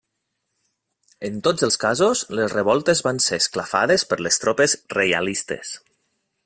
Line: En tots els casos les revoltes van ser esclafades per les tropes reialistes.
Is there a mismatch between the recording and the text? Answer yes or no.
no